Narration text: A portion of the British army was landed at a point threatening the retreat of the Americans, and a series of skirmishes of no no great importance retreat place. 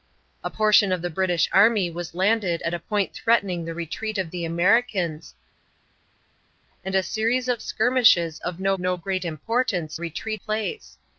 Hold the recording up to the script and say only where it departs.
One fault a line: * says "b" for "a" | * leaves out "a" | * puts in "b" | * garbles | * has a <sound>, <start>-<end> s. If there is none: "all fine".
all fine